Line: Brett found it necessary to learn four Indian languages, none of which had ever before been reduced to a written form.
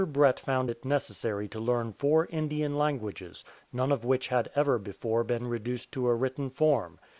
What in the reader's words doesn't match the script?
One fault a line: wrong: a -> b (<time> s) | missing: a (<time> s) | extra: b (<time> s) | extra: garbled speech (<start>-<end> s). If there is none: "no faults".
no faults